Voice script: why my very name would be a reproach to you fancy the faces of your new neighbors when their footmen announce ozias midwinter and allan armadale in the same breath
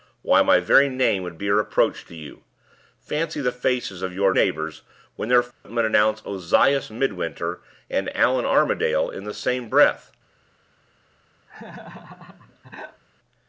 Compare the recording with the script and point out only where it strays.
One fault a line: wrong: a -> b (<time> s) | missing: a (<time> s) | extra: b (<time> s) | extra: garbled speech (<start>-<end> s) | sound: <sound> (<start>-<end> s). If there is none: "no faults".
missing: new (4.3 s)
sound: dropout (5.5-5.7 s)
sound: laugh (11.5-13.0 s)